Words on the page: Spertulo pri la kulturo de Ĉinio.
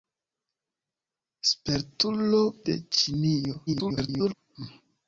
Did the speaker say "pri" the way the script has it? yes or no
no